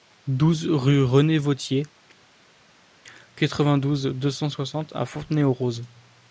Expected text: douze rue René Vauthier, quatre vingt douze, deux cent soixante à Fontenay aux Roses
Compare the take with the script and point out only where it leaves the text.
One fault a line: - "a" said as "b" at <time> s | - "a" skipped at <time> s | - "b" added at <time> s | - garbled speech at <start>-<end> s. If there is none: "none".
none